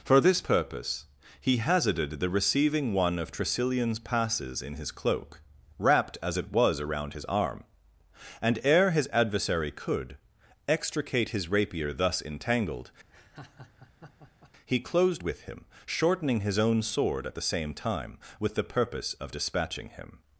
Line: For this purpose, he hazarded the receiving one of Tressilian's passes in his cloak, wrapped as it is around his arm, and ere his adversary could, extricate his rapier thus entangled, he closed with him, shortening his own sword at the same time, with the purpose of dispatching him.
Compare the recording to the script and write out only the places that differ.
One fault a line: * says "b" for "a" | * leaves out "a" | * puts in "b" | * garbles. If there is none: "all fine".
* says "was" for "is"